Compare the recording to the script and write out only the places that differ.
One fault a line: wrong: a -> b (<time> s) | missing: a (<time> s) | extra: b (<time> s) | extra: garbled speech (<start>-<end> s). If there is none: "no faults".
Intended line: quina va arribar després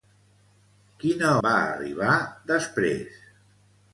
no faults